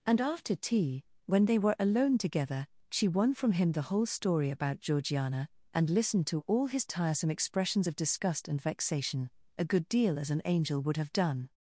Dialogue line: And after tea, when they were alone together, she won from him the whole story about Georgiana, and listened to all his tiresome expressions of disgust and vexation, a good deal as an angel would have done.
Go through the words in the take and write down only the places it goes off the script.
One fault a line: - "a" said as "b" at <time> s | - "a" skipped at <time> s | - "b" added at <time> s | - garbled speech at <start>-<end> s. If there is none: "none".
none